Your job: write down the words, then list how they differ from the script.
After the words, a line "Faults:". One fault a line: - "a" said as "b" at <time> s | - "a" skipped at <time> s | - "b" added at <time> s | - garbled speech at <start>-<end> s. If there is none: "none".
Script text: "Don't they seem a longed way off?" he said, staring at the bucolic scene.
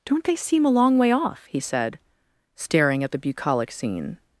"Don't they seem a long way off?" he said, staring at the bucolic scene.
Faults:
- "longed" said as "long" at 0.7 s